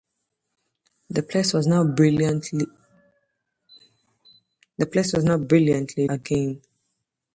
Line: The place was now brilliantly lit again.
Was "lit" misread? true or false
true